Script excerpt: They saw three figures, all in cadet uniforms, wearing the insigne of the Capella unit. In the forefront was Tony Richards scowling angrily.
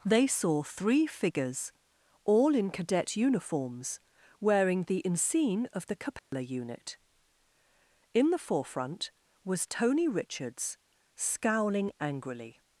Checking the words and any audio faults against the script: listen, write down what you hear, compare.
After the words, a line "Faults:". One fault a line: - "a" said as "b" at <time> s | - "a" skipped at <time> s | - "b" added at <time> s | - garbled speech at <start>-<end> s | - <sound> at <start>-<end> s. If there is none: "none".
They saw three figures, all in cadet uniforms, wearing the insigne of the Capella unit. In the forefront was Tony Richards scowling angrily.
Faults:
- dropout at 6.2-6.3 s